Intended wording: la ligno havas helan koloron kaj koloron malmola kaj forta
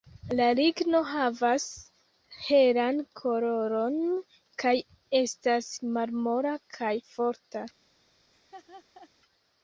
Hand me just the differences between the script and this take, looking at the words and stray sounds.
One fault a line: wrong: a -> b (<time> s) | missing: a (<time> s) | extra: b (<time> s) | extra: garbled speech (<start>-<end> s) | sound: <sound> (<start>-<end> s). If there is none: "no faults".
wrong: koloron -> estas (5.2 s)
sound: laugh (8.3-9.1 s)